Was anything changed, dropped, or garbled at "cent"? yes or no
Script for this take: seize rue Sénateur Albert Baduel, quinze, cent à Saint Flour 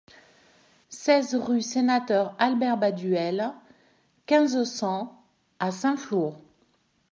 no